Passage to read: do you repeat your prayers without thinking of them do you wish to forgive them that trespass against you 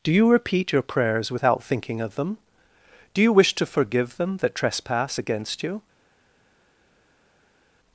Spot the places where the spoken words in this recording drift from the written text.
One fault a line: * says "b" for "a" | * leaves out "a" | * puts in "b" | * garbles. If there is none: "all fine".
all fine